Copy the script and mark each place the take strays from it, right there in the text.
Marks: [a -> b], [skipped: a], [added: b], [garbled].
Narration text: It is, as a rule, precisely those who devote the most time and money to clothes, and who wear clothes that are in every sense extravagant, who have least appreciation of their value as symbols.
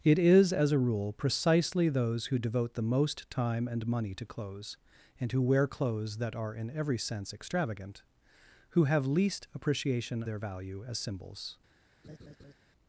It is, as a rule, precisely those who devote the most time and money to clothes, and who wear clothes that are in every sense extravagant, who have least appreciation [skipped: of] their value as symbols.